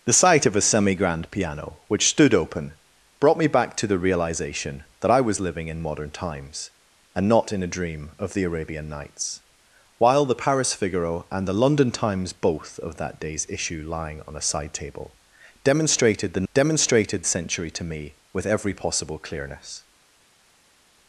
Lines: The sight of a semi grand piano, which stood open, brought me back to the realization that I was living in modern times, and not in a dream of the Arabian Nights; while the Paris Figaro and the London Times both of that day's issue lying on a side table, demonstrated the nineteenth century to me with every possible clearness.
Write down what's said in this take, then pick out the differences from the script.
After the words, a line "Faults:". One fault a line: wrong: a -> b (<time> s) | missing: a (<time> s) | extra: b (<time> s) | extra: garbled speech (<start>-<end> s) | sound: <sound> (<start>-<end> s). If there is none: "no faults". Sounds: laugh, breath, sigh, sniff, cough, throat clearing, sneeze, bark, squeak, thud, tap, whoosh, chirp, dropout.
The sight of a semi grand piano, which stood open, brought me back to the realization that I was living in modern times, and not in a dream of the Arabian Nights; while the Paris Figaro and the London Times both of that day's issue lying on a side table, demonstrated the demonstrated century to me with every possible clearness.
Faults:
wrong: nineteenth -> demonstrated (16.5 s)